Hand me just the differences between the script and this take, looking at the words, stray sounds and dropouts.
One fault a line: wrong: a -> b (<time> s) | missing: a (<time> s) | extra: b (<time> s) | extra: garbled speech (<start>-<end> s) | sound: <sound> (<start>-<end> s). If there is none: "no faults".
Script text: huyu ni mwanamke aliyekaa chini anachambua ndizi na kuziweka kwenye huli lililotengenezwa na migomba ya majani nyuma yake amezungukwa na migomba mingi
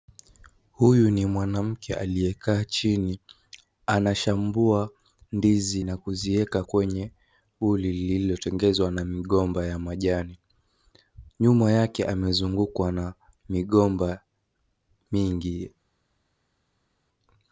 no faults